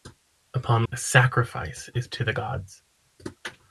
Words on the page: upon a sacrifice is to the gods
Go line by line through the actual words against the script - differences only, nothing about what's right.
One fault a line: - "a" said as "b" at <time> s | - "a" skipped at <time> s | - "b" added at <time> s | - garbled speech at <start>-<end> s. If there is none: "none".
none